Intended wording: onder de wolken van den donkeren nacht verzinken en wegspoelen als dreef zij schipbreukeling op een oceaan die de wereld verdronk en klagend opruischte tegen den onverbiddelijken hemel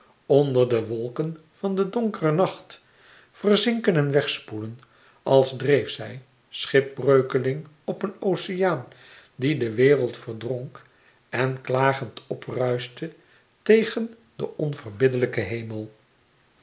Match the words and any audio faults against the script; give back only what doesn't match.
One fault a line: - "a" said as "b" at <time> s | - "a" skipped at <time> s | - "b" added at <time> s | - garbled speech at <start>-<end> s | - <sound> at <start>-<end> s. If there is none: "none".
none